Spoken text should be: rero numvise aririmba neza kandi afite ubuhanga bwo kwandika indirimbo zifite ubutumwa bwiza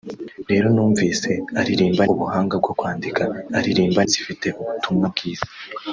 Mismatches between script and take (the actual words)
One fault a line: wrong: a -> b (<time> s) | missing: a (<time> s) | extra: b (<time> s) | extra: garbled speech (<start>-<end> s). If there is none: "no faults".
missing: neza kandi afite (2.0 s)
wrong: indirimbo -> aririmba (3.6 s)